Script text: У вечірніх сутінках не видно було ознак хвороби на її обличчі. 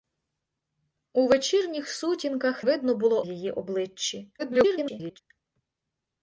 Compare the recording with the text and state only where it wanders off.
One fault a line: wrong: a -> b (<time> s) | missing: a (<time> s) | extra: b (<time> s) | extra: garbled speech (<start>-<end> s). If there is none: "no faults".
missing: не (2.6 s)
missing: ознак хвороби на (3.2 s)
extra: garbled speech (4.4-5.2 s)